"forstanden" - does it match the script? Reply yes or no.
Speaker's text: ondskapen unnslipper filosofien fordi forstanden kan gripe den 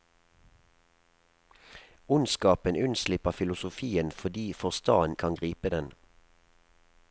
yes